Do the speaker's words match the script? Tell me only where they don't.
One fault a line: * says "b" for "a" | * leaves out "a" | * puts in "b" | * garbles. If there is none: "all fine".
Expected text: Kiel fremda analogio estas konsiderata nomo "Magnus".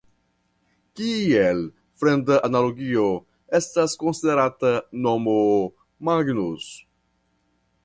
all fine